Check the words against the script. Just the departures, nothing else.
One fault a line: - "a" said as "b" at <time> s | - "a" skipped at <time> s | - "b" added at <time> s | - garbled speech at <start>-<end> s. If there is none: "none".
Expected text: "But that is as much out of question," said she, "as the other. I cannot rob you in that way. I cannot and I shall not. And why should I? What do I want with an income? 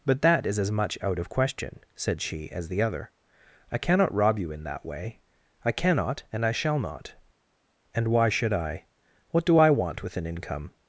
none